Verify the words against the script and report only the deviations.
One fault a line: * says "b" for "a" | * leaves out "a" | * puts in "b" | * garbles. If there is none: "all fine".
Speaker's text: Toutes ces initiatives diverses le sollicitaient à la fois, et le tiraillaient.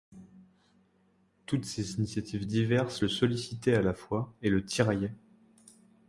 all fine